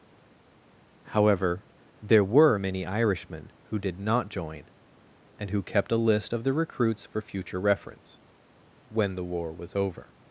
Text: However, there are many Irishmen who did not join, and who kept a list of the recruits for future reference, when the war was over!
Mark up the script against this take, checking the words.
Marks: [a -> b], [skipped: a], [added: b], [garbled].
However, there [are -> were] many Irishmen who did not join, and who kept a list of the recruits for future reference, when the war was over!